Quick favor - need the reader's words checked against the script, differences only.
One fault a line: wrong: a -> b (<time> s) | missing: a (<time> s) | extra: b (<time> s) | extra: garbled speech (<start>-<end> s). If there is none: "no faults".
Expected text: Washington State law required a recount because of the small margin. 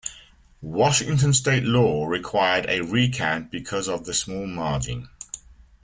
no faults